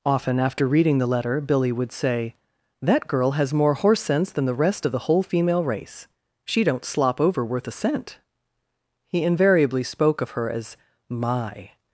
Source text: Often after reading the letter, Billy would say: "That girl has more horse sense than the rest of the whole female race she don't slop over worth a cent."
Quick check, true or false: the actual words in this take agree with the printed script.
false